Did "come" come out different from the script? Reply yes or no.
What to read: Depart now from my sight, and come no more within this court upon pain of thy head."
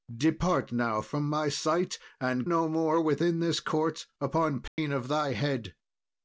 yes